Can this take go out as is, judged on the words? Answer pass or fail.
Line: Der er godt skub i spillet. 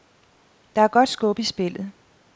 pass